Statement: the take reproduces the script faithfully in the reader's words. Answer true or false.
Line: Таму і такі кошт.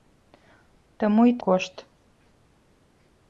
false